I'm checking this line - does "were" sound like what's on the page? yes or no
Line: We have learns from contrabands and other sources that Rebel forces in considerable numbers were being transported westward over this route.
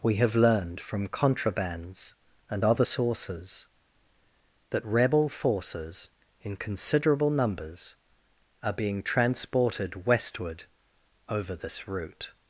no